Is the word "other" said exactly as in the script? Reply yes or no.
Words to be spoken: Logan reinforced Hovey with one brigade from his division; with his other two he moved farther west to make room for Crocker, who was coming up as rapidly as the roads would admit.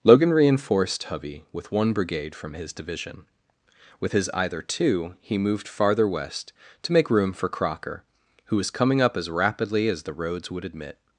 no